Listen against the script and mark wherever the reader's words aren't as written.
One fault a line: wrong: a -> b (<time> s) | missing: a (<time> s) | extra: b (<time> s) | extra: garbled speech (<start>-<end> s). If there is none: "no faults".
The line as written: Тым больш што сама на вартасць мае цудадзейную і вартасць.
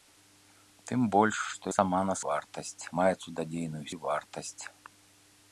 no faults